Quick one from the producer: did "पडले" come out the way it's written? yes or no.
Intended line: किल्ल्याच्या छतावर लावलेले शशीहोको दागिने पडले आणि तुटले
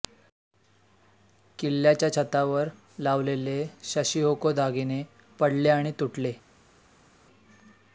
yes